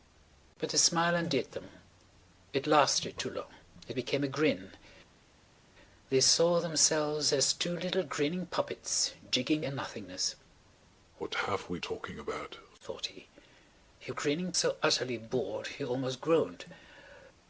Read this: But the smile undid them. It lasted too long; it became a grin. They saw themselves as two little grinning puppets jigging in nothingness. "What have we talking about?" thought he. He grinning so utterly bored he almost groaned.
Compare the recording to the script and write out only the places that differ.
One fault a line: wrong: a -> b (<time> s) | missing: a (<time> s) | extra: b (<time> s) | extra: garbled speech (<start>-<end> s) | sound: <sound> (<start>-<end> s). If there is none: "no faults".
no faults